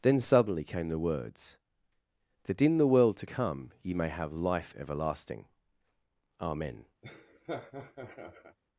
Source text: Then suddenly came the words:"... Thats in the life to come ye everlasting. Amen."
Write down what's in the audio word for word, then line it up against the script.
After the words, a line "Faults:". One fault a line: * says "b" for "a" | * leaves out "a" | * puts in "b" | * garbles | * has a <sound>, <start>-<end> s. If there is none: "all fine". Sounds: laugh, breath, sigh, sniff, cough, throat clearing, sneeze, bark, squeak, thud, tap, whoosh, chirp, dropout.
Then suddenly came the words:"... That in the world to come ye may have life everlasting. Amen."
Faults:
* says "That" for "Thats"
* says "world" for "life"
* puts in "may have life"
* has a laugh, 7.0-8.6 s